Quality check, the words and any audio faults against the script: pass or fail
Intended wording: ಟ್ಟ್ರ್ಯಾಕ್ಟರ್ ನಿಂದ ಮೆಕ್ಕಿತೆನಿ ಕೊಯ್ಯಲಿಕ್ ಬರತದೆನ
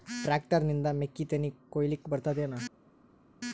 pass